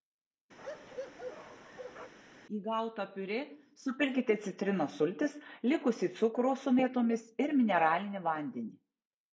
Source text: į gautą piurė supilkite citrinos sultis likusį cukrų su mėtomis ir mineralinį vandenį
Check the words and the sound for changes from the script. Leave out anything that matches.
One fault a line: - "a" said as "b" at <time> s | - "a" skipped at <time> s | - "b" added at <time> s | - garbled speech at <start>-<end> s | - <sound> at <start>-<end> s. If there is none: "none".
- bark at 0.6-2.1 s